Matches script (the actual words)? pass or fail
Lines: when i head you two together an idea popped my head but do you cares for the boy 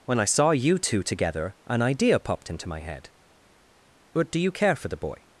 fail